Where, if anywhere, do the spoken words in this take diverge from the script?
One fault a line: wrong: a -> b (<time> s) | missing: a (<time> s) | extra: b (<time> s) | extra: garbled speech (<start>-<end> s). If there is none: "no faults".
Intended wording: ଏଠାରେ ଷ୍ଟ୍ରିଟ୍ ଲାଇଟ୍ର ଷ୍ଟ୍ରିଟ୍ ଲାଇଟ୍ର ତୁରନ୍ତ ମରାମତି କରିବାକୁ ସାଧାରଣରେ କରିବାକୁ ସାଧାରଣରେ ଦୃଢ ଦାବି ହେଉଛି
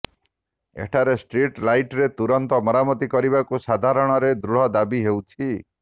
missing: ଷ୍ଟ୍ରିଟ୍ ଲାଇଟ୍ର (2.1 s)
missing: କରିବାକୁ ସାଧାରଣରେ (4.3 s)